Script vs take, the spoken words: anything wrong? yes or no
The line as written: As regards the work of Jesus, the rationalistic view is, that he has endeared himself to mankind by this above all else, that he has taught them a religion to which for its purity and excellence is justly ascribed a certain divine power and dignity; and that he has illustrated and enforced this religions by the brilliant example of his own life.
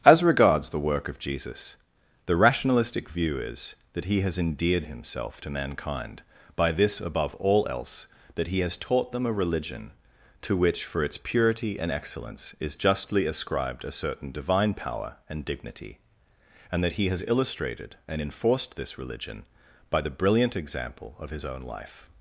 yes